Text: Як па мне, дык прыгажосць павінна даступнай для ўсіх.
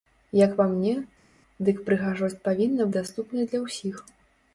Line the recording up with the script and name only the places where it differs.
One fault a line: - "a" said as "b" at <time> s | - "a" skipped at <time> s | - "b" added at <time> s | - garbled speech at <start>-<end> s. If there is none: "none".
none